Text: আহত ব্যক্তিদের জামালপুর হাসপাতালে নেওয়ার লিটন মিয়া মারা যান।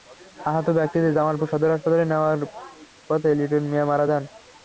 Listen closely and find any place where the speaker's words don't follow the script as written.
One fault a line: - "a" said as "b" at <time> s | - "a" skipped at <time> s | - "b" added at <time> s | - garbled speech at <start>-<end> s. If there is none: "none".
- "সদর" added at 1.5 s
- "পথে" added at 3.1 s